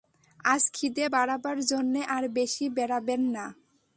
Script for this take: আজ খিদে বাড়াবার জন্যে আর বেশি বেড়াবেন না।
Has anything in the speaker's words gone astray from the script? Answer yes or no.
no